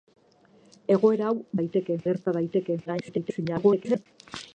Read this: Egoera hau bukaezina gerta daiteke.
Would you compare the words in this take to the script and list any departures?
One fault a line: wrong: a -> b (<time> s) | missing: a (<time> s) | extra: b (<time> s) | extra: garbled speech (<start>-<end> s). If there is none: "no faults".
wrong: bukaezina -> daiteke (1.6 s)
extra: garbled speech (2.9-4.1 s)